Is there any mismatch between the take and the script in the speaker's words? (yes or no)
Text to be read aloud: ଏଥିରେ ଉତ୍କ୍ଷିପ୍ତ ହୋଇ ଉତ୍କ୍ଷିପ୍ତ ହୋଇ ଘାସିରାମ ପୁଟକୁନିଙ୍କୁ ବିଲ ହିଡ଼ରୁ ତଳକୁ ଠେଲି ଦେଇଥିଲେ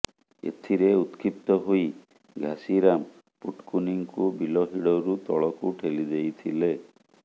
yes